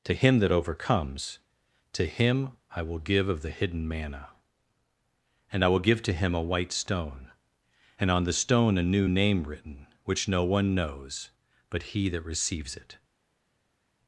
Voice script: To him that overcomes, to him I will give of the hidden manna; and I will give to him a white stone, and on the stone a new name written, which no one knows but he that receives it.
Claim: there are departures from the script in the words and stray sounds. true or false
false